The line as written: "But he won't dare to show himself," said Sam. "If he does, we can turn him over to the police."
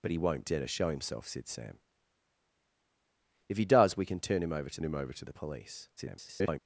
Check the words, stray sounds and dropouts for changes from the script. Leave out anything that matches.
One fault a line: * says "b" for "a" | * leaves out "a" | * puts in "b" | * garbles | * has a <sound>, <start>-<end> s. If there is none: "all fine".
* puts in "him over to"
* garbles